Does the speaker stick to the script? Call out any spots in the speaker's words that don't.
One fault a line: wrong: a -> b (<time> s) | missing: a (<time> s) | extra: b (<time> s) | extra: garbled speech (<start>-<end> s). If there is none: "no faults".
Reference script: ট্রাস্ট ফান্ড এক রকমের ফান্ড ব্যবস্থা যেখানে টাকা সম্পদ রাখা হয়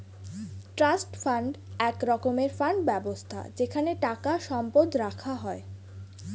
no faults